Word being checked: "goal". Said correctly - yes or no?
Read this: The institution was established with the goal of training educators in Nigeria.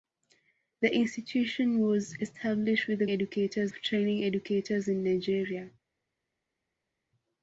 no